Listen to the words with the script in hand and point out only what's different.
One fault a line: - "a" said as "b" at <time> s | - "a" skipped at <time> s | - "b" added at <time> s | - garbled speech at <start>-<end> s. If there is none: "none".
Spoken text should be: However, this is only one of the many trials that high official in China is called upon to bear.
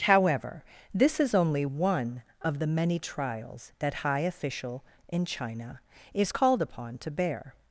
none